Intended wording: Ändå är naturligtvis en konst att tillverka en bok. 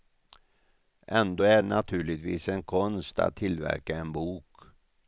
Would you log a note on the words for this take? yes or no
no